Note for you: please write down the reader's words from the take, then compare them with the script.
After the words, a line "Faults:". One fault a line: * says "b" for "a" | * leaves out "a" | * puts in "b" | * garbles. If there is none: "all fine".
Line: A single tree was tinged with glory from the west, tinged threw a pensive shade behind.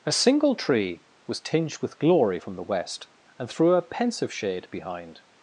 A single tree was tinged with glory from the west, and threw a pensive shade behind.
Faults:
* says "and" for "tinged"